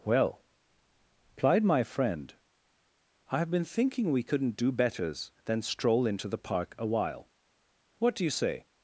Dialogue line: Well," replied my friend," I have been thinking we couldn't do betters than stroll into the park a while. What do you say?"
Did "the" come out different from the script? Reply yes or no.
no